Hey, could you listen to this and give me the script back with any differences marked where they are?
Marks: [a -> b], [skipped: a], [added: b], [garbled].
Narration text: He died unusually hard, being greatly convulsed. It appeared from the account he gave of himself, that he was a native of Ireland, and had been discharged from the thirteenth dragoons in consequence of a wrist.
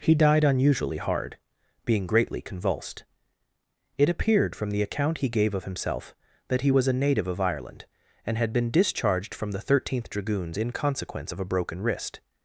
He died unusually hard, being greatly convulsed. It appeared from the account he gave of himself, that he was a native of Ireland, and had been discharged from the thirteenth dragoons in consequence of a [added: broken] wrist.